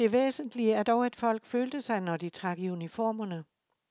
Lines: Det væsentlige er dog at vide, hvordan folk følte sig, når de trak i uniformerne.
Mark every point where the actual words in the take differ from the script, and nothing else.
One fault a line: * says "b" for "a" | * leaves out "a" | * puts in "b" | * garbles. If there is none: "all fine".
* leaves out "vide hvordan"